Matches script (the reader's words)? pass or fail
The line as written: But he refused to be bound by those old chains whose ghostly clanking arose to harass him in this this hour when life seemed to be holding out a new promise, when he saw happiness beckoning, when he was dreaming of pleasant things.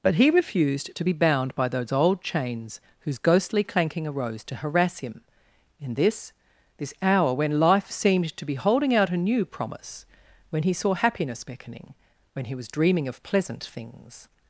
pass